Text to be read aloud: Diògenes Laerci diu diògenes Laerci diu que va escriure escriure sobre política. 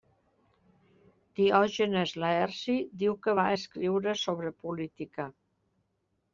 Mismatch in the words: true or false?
true